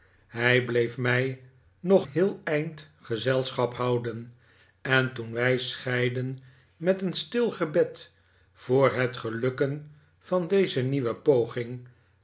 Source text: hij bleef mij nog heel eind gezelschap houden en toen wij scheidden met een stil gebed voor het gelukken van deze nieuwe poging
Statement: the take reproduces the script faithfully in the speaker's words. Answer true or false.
true